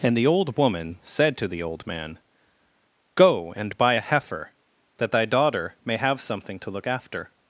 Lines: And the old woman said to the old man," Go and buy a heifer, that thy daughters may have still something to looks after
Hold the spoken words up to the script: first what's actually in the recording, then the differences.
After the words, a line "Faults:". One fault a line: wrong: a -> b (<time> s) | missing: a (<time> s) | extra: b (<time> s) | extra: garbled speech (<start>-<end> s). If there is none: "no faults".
And the old woman said to the old man," Go and buy a heifer, that thy daughter may have something to look after
Faults:
wrong: daughters -> daughter (5.2 s)
missing: still (6.2 s)
wrong: looks -> look (6.7 s)